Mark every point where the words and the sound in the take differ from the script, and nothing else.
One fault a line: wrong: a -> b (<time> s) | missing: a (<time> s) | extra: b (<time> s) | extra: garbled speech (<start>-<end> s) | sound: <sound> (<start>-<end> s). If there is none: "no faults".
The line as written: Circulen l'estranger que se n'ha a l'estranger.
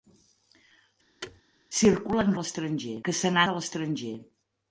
sound: thud (1.2-1.4 s)